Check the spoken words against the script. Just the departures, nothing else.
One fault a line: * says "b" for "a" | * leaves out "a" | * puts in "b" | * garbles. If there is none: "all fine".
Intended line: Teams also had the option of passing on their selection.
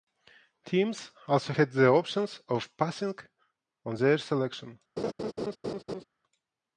all fine